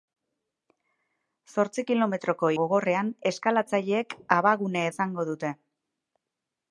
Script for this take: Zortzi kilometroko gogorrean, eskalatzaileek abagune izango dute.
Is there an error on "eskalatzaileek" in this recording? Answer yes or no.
no